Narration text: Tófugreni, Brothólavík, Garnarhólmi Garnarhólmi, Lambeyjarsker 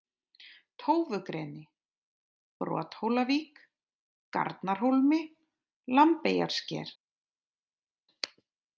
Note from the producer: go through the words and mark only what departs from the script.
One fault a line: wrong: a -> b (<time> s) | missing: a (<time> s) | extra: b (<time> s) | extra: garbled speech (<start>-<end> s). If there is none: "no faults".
missing: Garnarhólmi (5.2 s)